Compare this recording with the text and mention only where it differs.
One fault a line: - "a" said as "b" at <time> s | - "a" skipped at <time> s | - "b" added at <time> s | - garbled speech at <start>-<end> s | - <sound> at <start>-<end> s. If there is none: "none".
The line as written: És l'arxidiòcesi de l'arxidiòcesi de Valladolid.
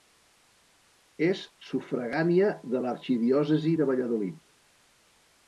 - "l'arxidiòcesi" said as "sufragània" at 1.7 s